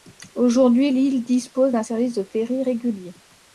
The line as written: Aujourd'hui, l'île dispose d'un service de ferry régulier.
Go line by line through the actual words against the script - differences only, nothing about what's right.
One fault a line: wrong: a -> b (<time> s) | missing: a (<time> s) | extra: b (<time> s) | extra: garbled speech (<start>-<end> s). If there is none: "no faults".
no faults